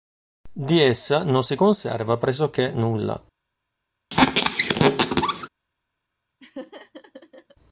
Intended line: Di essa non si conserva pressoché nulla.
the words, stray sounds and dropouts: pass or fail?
fail